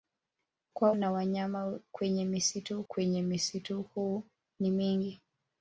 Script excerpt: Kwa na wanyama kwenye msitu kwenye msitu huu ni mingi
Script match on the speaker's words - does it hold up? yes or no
yes